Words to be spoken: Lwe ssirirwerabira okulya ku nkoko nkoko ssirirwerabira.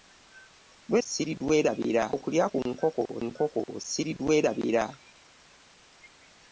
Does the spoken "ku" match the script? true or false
true